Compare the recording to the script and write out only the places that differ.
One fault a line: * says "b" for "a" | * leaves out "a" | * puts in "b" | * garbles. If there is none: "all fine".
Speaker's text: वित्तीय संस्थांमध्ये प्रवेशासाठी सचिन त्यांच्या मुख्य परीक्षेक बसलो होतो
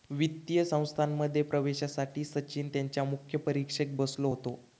all fine